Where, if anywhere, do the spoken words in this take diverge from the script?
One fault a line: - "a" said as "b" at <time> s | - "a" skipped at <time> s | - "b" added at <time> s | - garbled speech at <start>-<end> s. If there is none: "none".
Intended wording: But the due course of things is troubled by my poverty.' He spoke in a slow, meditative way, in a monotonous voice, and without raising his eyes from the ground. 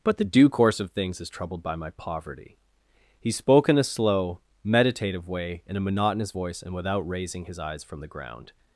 none